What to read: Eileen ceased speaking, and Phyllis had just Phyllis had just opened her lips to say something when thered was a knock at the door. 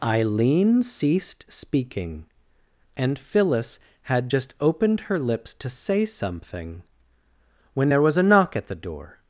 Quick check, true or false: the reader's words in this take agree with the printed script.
false